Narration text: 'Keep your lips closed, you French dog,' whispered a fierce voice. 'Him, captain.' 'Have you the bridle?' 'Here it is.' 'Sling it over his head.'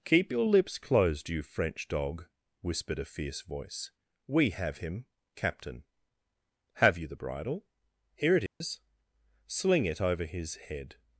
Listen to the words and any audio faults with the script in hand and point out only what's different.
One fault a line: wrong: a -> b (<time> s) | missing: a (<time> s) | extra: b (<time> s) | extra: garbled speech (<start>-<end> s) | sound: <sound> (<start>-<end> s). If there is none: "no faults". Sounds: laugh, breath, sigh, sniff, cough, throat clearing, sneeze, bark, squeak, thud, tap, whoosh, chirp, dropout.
extra: We have (4.3 s)
sound: dropout (8.5-8.6 s)